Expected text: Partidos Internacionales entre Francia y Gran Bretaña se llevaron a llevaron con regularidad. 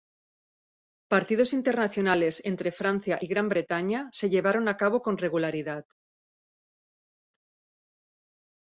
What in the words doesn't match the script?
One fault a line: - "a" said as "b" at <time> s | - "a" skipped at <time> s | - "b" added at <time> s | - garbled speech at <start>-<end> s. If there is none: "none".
- "llevaron" said as "cabo" at 4.8 s